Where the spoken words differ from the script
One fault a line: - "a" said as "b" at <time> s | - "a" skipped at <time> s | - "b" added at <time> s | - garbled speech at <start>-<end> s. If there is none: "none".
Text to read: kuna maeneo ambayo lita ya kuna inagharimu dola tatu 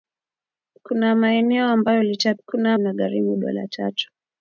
none